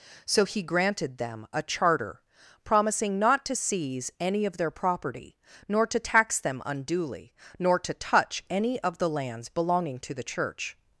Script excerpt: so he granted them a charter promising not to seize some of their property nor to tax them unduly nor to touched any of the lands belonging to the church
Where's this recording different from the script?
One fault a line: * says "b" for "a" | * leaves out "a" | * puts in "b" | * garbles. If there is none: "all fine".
* says "any" for "some"
* says "touch" for "touched"